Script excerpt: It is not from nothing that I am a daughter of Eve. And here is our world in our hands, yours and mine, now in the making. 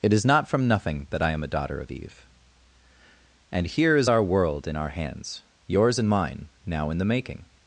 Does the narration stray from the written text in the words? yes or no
no